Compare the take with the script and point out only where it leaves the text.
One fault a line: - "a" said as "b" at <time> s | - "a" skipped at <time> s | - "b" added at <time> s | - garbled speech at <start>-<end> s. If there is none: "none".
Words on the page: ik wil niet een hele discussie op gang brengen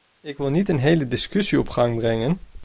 none